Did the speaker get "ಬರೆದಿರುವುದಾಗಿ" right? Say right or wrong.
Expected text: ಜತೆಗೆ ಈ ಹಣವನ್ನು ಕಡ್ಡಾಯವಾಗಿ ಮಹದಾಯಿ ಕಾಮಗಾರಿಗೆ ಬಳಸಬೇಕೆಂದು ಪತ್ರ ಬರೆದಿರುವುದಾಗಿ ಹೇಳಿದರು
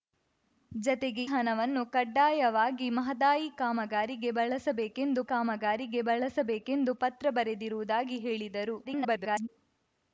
right